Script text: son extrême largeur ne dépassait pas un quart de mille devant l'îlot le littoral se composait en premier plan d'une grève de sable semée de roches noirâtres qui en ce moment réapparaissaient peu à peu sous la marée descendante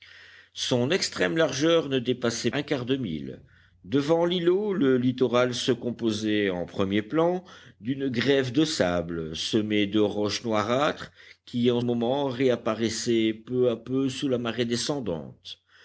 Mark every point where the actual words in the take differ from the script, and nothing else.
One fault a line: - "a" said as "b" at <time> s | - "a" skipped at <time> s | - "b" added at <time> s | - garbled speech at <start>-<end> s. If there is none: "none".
- "pas" skipped at 2.5 s
- "ce" skipped at 11.8 s